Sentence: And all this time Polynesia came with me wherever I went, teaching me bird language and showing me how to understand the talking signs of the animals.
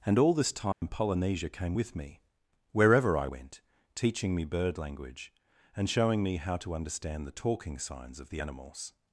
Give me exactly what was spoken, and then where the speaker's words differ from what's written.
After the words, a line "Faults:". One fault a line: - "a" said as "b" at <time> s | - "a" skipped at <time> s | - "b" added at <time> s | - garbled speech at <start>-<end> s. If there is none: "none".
And all this time Polynesia came with me wherever I went, teaching me bird language and showing me how to understand the talking signs of the animals.
Faults:
none